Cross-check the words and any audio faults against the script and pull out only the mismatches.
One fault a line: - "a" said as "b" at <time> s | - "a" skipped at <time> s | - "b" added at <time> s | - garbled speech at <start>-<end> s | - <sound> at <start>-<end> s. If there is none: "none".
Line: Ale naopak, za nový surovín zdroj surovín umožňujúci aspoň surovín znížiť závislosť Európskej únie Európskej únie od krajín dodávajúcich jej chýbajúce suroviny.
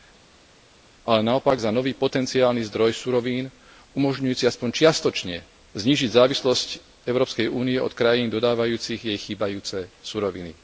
- "surovín" said as "potenciálny" at 1.9 s
- "surovín" said as "čiastočne" at 4.7 s
- "Európskej únie" skipped at 7.8 s